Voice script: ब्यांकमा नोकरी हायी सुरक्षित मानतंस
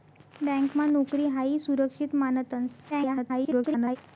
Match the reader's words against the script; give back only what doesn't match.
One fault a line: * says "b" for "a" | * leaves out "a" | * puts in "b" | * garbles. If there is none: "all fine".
* garbles